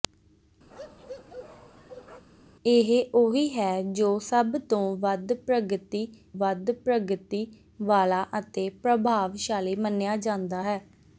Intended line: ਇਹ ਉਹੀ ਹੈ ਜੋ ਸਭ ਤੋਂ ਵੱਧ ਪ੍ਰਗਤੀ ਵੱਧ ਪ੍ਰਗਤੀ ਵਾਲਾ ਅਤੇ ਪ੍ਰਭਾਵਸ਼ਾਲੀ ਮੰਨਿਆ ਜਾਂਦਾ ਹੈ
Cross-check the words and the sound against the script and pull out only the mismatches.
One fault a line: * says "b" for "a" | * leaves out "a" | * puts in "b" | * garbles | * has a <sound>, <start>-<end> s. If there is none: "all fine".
* has a bark, 0.7-2.2 s